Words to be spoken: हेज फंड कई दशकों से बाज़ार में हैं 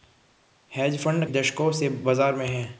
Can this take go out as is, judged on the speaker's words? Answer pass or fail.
fail